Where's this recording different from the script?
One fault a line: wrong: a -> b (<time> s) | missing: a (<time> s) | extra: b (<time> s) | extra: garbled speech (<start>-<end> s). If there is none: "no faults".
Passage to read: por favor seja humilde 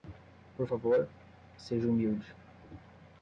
no faults